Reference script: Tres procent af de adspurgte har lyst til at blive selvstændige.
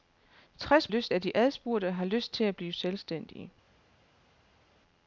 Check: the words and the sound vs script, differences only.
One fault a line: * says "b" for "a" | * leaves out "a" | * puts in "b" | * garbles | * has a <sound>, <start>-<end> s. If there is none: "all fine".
* says "lyst" for "procent"